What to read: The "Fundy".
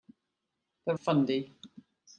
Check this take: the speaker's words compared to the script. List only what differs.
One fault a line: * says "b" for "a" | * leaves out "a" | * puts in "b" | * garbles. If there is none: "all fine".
all fine